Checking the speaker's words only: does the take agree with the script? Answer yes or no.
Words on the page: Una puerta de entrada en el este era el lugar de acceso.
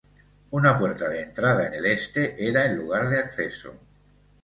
yes